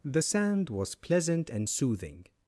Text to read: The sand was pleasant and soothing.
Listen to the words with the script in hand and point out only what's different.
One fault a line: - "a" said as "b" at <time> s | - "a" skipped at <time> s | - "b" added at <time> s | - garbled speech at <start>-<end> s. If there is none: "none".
none